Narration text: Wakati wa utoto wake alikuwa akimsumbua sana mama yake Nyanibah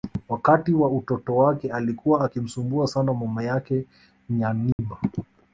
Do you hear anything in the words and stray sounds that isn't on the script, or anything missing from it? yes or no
yes